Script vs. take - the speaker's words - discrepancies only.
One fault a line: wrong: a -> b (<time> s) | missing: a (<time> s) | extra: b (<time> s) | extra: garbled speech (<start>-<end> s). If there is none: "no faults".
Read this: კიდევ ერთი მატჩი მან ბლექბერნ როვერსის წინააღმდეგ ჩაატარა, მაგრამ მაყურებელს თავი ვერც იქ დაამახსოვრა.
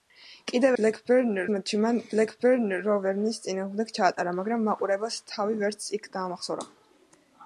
wrong: ერთი -> ბლექბერნ (0.8 s)